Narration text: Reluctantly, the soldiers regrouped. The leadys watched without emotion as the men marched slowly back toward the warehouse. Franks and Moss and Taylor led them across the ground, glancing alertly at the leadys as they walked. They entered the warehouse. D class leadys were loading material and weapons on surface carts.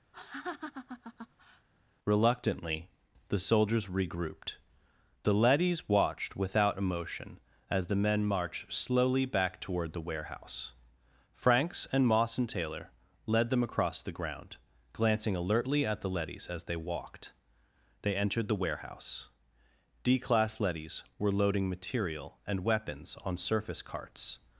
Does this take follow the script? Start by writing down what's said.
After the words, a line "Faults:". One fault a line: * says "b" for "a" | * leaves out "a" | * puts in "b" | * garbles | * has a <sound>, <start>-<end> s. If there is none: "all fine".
Reluctantly, the soldiers regrouped. The leadys watched without emotion as the men marched slowly back toward the warehouse. Franks and Moss and Taylor led them across the ground, glancing alertly at the leadys as they walked. They entered the warehouse. D class leadys were loading material and weapons on surface carts.
Faults:
* has a laugh, 0.1-1.7 s